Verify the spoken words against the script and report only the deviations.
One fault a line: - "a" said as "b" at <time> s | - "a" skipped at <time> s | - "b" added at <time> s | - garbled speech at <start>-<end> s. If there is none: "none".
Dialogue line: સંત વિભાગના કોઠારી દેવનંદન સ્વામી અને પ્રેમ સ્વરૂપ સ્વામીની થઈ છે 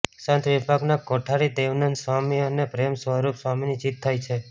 - "જીત" added at 3.8 s